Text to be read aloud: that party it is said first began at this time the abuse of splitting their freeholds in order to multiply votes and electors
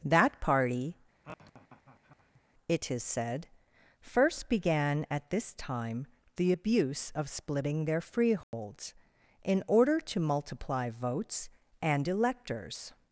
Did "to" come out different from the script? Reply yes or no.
no